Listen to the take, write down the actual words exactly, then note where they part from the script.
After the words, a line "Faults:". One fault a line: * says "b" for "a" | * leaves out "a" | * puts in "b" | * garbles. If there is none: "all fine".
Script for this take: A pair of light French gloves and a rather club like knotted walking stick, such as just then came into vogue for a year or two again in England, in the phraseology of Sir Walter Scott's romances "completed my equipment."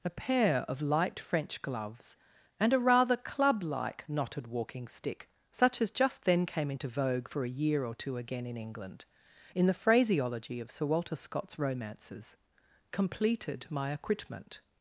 A pair of light French gloves and a rather club like knotted walking stick, such as just then came into vogue for a year or two again in England, in the phraseology of Sir Walter Scott's romances "completed my equipment."
Faults:
all fine